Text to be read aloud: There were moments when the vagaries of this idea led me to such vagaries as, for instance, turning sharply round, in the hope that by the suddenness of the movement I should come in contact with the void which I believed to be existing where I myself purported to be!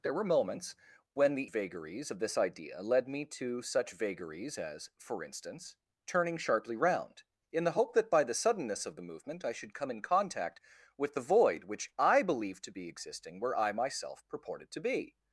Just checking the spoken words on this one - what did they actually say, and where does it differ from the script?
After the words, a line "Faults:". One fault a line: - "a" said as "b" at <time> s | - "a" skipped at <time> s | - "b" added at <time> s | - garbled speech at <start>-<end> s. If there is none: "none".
There were moments when the vagaries of this idea led me to such vagaries as, for instance, turning sharply round, in the hope that by the suddenness of the movement I should come in contact with the void which I believed to be existing where I myself purported to be!
Faults:
none